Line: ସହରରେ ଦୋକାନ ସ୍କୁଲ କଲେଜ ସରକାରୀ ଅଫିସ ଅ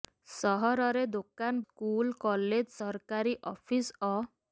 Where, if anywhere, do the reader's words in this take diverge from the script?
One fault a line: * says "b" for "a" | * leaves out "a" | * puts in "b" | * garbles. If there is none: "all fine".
all fine